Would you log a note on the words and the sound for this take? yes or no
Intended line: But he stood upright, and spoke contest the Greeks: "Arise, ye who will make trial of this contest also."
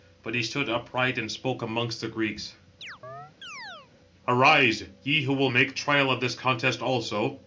yes